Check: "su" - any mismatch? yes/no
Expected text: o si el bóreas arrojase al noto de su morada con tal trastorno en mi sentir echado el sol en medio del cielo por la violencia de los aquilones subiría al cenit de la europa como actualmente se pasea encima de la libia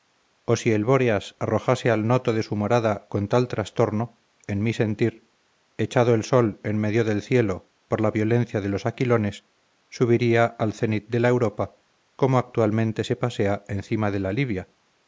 no